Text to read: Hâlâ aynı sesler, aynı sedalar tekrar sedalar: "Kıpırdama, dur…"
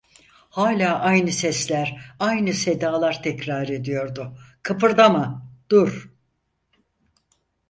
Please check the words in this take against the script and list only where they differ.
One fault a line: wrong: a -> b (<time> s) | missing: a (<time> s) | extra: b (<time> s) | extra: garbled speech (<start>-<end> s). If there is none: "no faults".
wrong: sedalar -> ediyordu (3.7 s)